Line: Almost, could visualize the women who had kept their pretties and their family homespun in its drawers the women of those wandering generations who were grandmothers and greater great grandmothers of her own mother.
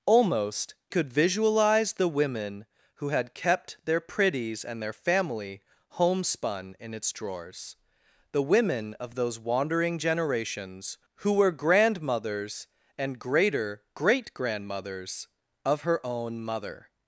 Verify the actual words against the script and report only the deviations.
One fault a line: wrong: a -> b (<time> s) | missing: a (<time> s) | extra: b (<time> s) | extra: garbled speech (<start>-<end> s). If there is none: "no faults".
no faults